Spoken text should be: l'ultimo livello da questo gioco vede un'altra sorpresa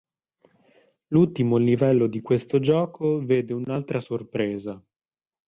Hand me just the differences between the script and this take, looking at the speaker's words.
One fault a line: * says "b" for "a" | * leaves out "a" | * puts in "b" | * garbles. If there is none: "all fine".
* says "di" for "da"